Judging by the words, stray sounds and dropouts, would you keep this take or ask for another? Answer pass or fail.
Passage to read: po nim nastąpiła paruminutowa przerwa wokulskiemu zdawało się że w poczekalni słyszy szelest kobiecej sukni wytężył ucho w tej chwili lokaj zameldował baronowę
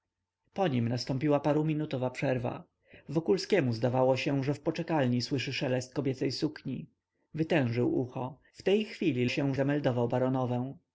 fail